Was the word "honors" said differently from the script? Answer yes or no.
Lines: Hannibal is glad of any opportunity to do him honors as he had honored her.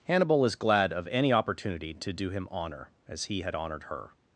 yes